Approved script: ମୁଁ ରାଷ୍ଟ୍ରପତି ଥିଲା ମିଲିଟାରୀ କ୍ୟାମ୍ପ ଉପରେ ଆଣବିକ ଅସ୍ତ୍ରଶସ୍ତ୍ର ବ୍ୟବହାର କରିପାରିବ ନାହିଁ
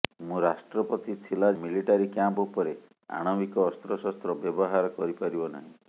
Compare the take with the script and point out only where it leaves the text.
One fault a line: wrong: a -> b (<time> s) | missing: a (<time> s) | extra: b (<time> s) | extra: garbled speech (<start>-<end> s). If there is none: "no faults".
no faults